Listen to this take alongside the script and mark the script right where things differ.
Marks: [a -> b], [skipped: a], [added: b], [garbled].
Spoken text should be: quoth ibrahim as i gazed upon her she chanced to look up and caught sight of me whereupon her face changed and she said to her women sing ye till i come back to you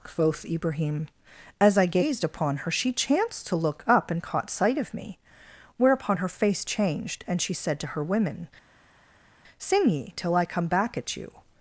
quoth ibrahim as i gazed upon her she chanced to look up and caught sight of me whereupon her face changed and she said to her women sing ye till i come back [to -> at] you